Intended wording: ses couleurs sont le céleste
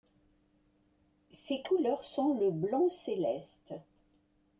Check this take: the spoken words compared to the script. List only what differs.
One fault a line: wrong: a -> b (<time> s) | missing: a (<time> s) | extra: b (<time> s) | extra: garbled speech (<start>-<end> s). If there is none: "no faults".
extra: blanc (2.5 s)